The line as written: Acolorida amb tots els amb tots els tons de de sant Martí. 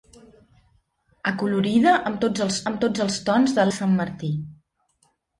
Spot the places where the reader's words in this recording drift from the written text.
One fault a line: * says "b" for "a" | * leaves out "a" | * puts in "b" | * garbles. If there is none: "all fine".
all fine